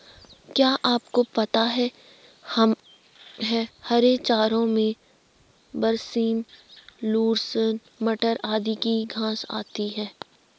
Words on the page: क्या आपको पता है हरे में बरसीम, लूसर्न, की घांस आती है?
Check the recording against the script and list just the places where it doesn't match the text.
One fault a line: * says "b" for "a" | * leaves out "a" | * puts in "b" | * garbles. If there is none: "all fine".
* puts in "चारों"
* puts in "मटर आदि"